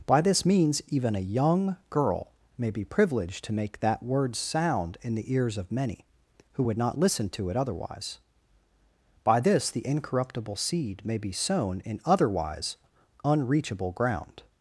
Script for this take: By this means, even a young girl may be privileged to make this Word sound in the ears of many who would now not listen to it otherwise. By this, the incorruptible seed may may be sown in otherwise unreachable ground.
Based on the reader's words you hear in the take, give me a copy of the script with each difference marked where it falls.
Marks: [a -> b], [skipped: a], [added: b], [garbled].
By this means, even a young girl may be privileged to make [this -> that] Word sound in the ears of many who would [skipped: now] not listen to it otherwise. By this, the incorruptible seed may [skipped: may] be sown in otherwise unreachable ground.